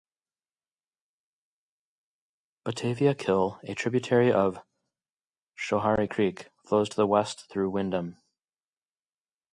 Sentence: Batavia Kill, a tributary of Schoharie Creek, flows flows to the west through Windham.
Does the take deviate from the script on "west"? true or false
false